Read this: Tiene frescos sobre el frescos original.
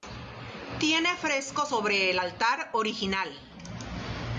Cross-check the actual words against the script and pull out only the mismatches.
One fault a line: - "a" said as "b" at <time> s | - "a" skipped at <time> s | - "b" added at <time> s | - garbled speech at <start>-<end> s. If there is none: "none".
- "frescos" said as "altar" at 2.2 s